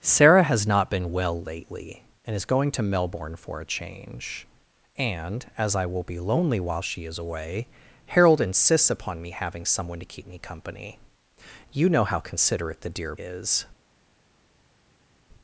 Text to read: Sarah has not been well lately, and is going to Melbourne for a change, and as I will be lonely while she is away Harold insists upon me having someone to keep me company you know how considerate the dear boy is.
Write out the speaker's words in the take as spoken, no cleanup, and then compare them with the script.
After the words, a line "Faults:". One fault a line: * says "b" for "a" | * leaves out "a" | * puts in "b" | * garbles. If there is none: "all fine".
Sarah has not been well lately, and is going to Melbourne for a change, and as I will be lonely while she is away Harold insists upon me having someone to keep me company you know how considerate the dear is.
Faults:
* leaves out "boy"